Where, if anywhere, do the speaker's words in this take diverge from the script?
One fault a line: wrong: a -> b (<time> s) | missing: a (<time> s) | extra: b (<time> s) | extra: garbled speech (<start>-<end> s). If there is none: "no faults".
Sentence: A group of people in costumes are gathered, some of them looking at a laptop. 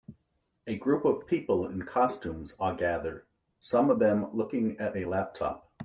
no faults